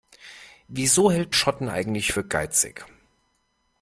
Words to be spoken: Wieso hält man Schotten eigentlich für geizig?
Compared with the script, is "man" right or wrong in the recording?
wrong